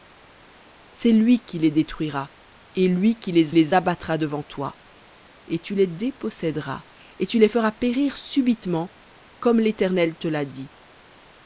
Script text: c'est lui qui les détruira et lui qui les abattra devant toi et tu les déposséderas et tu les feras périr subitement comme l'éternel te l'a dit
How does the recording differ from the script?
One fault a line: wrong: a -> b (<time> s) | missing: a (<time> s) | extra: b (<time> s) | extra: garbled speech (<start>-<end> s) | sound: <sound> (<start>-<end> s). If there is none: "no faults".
extra: les (3.5 s)